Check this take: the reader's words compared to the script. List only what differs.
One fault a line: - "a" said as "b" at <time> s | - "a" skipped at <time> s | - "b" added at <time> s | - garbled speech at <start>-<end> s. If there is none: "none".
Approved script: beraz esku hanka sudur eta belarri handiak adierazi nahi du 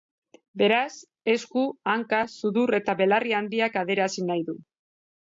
none